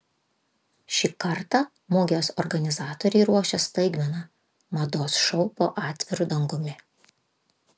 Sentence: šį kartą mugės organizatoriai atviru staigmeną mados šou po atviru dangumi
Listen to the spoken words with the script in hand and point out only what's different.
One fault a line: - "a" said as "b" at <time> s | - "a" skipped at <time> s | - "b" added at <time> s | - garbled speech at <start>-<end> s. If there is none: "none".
- "atviru" said as "ruošia" at 3.3 s